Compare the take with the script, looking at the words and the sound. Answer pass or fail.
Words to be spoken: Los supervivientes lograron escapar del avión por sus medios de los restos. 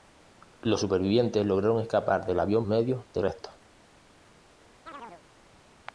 fail